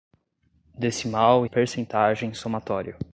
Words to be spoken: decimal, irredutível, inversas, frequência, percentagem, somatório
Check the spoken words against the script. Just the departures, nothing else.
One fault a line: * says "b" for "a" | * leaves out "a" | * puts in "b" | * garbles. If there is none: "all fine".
* leaves out "irredutível inversas frequência"